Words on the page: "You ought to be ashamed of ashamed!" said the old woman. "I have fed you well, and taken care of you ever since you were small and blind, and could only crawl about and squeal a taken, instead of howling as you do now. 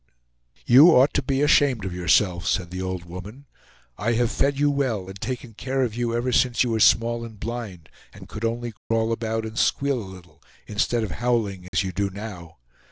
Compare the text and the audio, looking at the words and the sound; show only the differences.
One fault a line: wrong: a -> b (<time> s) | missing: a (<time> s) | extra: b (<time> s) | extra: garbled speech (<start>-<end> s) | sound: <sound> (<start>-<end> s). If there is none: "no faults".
wrong: ashamed -> yourself (1.9 s)
sound: dropout (8.8-8.9 s)
wrong: taken -> little (10.1 s)
sound: dropout (11.7-11.7 s)